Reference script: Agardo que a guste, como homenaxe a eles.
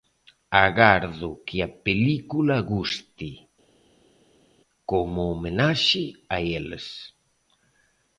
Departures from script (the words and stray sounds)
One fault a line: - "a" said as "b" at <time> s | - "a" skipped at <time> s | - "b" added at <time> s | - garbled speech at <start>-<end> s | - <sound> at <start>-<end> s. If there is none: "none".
- "película" added at 1.9 s